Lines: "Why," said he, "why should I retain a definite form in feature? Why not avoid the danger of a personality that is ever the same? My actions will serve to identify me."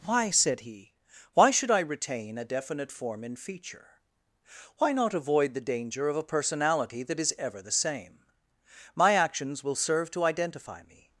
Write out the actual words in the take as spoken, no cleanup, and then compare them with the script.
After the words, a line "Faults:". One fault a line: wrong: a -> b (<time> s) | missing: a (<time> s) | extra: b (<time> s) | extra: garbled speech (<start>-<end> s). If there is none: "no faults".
"Why," said he, "why should I retain a definite form in feature? Why not avoid the danger of a personality that is ever the same? My actions will serve to identify me."
Faults:
no faults